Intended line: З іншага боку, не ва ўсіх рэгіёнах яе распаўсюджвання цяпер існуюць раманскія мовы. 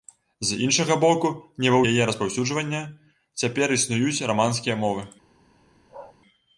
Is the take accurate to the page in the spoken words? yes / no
no